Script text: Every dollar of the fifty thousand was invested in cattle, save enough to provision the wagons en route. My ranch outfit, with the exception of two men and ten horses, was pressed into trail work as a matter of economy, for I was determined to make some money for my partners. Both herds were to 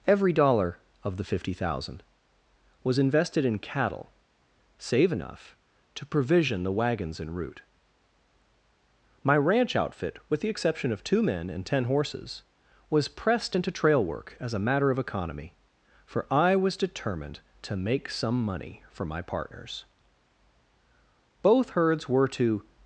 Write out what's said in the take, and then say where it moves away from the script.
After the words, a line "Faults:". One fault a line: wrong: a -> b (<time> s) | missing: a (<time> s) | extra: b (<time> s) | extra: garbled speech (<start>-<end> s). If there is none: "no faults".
Every dollar of the fifty thousand was invested in cattle, save enough to provision the wagons en route. My ranch outfit, with the exception of two men and ten horses, was pressed into trail work as a matter of economy, for I was determined to make some money for my partners. Both herds were to
Faults:
no faults